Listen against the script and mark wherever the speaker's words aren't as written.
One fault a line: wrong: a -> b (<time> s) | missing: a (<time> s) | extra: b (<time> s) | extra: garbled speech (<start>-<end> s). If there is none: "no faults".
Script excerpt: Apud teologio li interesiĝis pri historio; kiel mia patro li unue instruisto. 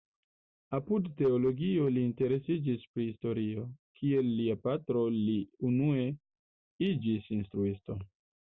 wrong: mia -> lia (4.4 s)
extra: iĝis (6.9 s)